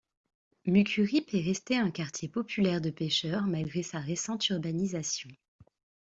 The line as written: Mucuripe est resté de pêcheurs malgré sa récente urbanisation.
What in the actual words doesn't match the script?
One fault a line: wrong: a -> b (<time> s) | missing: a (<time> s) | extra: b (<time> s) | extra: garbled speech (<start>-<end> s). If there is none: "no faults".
extra: un quartier populaire (1.8 s)